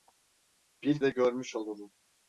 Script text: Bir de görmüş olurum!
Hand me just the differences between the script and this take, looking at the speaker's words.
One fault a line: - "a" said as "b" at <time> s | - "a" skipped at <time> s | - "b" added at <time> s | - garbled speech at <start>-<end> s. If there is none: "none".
none